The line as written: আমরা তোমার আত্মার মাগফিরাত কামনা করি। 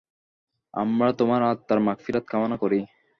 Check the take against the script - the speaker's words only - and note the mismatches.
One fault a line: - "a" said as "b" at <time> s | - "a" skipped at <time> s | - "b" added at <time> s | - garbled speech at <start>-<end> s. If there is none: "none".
none